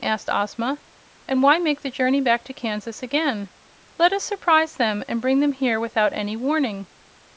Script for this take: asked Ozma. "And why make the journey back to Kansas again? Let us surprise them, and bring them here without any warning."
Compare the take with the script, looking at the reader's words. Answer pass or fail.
pass